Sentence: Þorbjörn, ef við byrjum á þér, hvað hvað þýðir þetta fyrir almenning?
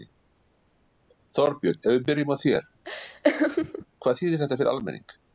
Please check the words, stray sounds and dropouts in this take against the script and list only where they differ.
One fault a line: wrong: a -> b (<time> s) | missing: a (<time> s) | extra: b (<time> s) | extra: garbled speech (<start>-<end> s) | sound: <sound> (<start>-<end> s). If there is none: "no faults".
sound: laugh (2.8-3.9 s)
missing: hvað (4.2 s)